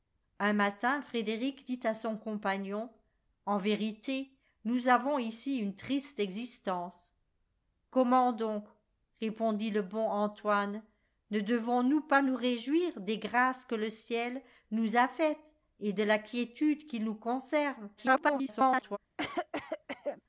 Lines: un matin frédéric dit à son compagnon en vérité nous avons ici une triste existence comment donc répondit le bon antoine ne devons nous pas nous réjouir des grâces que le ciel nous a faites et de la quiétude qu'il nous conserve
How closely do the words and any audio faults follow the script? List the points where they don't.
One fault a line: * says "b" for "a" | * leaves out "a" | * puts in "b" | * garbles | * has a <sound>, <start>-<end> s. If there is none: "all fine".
* garbles
* has a cough, 19.2-20.2 s